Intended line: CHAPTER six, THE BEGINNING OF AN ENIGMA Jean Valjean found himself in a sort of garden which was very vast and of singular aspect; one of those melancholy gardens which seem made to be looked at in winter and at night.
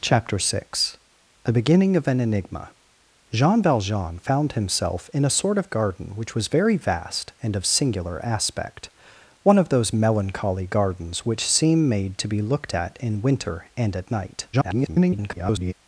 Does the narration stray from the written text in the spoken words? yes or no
yes